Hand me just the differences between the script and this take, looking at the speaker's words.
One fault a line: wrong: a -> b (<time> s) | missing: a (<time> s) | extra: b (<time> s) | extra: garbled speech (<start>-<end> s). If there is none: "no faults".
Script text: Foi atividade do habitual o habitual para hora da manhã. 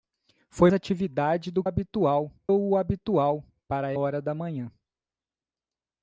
no faults